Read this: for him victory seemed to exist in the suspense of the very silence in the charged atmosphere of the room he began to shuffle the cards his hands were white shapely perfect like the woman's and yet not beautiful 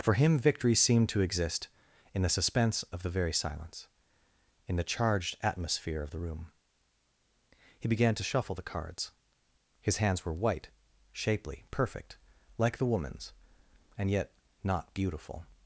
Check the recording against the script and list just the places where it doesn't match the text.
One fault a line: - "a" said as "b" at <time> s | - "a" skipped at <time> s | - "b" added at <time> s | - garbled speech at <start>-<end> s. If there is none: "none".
none